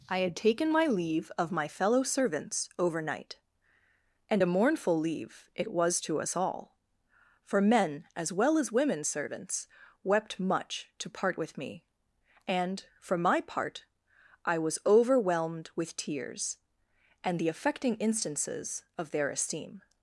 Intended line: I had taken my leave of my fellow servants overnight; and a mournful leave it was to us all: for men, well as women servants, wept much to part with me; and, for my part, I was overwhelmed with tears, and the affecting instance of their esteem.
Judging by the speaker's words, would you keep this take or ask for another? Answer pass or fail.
fail